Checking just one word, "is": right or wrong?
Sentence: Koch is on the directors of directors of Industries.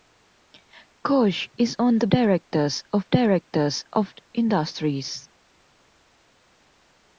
right